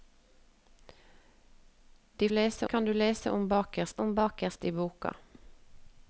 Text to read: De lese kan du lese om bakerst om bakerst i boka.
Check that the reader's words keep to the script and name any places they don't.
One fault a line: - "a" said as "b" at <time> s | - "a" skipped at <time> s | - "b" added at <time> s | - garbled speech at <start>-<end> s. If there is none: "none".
none